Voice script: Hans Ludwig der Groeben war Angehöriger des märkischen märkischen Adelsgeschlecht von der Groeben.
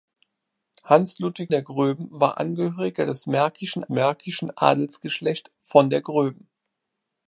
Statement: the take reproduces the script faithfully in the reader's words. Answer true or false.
true